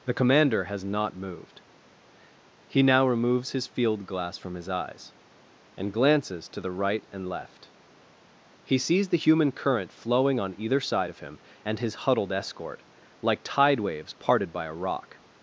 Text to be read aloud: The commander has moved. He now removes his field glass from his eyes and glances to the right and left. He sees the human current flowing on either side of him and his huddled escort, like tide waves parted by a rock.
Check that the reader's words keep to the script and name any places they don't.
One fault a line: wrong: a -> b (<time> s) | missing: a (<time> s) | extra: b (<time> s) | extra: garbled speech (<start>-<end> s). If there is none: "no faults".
extra: not (0.8 s)